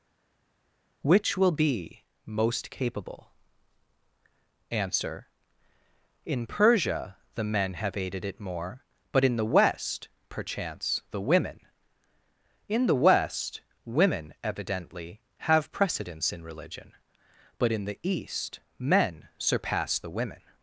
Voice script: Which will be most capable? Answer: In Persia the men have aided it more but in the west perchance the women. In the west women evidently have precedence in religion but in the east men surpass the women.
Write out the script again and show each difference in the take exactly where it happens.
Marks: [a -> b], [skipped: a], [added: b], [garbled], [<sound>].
Which will be most capable? Answer: In Persia the men have aided it more but in the west perchance the women. In the west women evidently have precedence in religion but in the east men surpass the women.